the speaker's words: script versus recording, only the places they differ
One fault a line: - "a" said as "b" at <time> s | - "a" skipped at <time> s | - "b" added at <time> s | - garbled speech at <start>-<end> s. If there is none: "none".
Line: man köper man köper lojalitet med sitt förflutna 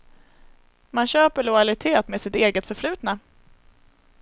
- "man köper" skipped at 1.4 s
- "eget" added at 2.3 s